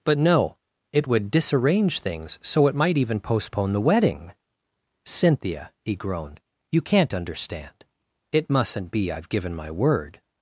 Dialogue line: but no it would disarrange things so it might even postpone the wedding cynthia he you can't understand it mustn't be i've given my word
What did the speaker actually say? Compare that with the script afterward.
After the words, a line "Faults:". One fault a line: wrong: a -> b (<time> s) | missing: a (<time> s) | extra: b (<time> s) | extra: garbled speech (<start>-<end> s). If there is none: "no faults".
but no it would disarrange things so it might even postpone the wedding cynthia he groaned you can't understand it mustn't be i've given my word
Faults:
extra: groaned (6.0 s)